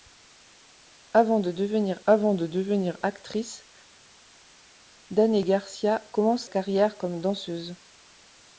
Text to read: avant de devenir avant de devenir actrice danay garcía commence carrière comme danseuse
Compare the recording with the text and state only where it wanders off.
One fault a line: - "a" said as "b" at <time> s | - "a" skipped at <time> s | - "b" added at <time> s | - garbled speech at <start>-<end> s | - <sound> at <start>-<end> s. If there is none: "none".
none